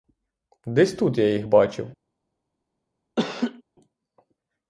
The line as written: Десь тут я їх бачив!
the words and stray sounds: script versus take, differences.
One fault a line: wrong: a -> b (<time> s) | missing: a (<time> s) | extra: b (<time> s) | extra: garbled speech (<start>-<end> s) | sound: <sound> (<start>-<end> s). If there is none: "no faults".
sound: laugh (3.2-3.6 s)